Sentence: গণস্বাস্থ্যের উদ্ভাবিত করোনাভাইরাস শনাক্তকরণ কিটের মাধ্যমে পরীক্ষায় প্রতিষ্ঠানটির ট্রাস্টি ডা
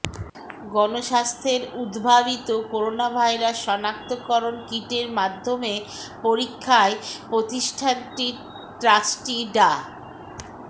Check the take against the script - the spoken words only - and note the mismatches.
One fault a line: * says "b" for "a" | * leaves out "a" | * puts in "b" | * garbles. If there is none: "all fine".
all fine